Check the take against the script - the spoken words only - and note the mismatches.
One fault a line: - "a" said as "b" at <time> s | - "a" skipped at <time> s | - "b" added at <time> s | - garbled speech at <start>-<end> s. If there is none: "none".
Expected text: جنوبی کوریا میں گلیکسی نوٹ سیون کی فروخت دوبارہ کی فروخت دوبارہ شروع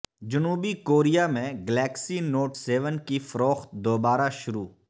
- "کی فروخت دوبارہ" skipped at 4.3 s